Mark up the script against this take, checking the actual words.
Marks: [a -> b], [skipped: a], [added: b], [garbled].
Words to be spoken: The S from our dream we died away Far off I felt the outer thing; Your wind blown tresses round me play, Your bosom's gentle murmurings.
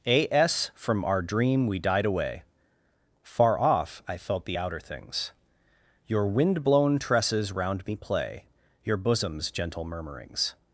[The -> A] S from our dream we died away Far off I felt the outer [thing; -> things] Your wind blown tresses round me play, Your bosom's gentle murmurings.